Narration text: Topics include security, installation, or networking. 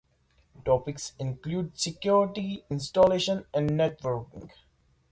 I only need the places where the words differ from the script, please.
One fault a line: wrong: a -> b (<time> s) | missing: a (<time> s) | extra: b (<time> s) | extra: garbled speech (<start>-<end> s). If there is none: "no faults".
wrong: or -> and (3.5 s)